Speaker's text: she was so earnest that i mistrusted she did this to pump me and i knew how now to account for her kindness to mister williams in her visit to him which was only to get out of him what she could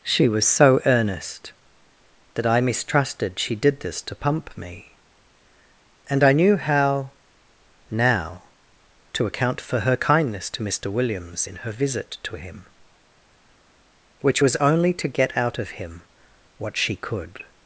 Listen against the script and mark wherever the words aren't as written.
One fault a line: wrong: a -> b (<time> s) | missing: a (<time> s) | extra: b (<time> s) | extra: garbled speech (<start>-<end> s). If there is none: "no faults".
no faults